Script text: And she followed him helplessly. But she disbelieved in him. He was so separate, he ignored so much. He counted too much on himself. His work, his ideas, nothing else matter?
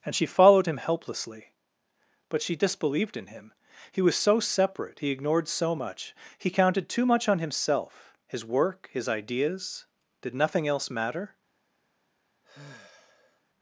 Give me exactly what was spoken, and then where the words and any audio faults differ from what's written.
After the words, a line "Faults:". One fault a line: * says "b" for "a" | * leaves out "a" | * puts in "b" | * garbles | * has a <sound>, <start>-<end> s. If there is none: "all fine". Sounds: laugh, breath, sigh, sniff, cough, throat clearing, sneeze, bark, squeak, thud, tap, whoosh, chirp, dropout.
And she followed him helplessly. But she disbelieved in him. He was so separate, he ignored so much. He counted too much on himself. His work, his ideas, did nothing else matter?
Faults:
* puts in "did"
* has a sigh, 12.4-13.4 s